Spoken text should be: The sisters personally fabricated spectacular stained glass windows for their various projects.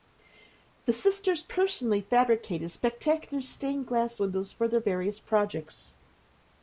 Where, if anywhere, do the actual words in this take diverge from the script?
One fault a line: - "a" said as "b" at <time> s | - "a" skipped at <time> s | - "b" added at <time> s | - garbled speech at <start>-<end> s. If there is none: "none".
none